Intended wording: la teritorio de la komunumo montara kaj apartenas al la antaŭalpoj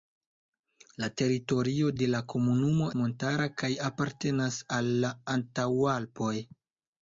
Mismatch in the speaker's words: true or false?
false